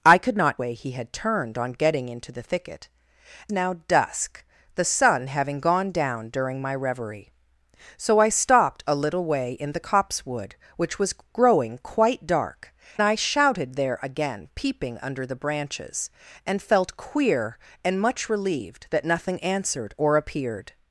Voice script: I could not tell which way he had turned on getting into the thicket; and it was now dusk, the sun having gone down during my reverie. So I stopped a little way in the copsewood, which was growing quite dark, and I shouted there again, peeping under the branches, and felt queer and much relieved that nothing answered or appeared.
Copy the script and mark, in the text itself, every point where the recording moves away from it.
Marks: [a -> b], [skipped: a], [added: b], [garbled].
I could not [skipped: tell which] way he had turned on getting into the thicket; [skipped: and it was] now dusk, the sun having gone down during my reverie. So I stopped a little way in the copsewood, which was growing quite dark, [skipped: and] I shouted there again, peeping under the branches, and felt queer and much relieved that nothing answered or appeared.